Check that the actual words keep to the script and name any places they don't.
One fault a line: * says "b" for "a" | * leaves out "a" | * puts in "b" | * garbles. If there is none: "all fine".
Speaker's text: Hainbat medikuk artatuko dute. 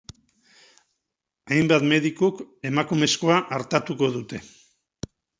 * puts in "emakumezkoa"